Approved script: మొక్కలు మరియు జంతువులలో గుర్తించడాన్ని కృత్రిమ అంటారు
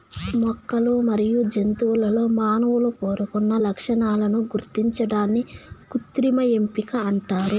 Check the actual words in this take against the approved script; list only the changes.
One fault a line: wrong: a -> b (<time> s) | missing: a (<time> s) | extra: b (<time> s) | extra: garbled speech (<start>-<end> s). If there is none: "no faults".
extra: మానవులు కోరుకున్న లక్షణాలను (2.4 s)
extra: ఎంపిక (6.6 s)